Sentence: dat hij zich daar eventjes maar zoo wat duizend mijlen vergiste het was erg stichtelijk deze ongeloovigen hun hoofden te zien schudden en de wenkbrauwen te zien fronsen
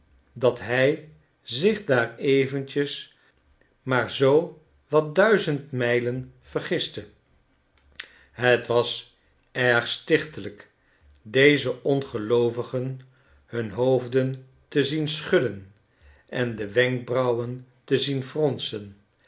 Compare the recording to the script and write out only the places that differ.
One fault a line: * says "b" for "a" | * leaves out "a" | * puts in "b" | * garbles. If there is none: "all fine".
all fine